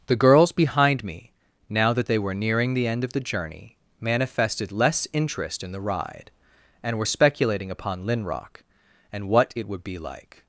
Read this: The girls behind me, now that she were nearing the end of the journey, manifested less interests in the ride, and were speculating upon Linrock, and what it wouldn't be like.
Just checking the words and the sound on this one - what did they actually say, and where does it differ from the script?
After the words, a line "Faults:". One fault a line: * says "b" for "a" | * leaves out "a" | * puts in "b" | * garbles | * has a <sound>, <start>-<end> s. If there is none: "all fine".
The girls behind me, now that they were nearing the end of the journey, manifested less interest in the ride, and were speculating upon Linrock, and what it would be like.
Faults:
* says "they" for "she"
* says "interest" for "interests"
* says "would" for "wouldn't"